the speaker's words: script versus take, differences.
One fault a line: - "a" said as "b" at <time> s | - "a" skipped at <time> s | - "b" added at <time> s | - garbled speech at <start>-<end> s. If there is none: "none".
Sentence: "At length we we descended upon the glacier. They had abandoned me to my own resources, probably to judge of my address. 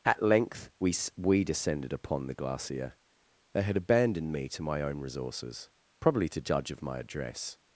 none